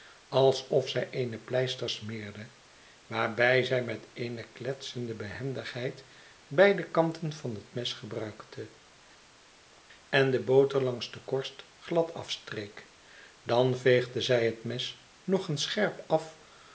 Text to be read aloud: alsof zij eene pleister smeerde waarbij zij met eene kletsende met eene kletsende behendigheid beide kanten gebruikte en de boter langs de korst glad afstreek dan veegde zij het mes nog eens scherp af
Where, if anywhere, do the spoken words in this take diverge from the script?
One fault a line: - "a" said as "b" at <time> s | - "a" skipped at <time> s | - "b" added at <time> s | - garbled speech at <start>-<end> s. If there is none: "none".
- "met eene kletsende behendigheid beide kanten" said as "behendigheid beide kanten van het mes" at 5.1 s